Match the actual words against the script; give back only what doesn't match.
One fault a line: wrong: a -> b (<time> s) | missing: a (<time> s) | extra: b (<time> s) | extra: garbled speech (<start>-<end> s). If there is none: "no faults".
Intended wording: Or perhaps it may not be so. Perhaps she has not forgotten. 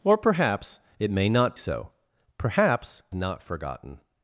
missing: be (1.6 s)
missing: she has (3.0 s)